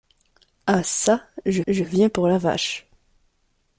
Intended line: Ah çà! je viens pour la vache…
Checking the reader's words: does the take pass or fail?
fail